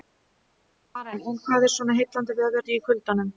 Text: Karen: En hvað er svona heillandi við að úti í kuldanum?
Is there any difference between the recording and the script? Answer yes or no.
no